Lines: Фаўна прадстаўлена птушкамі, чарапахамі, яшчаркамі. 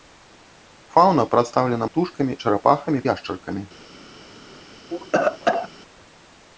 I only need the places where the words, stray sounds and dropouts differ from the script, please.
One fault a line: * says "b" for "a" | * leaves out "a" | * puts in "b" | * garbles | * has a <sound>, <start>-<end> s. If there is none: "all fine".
* has a cough, 4.9-5.7 s